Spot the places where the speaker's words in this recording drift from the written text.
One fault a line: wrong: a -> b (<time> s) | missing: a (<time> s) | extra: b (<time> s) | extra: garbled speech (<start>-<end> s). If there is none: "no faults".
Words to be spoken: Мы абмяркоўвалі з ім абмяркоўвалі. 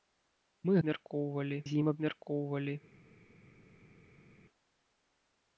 no faults